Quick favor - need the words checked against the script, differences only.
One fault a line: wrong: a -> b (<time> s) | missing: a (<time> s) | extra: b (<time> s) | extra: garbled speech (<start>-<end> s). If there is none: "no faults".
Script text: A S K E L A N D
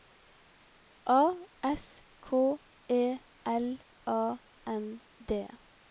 no faults